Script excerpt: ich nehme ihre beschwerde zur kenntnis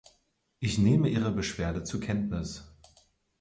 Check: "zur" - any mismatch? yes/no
no